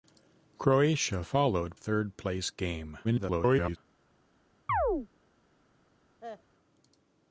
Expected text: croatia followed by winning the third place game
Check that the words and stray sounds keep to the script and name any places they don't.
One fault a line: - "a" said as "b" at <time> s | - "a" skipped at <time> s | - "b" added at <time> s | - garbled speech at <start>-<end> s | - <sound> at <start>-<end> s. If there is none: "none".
- "by winning the" skipped at 1.8 s
- garbled speech at 3.0-3.8 s
- chirp at 4.7-5.1 s
- cough at 6.2-6.4 s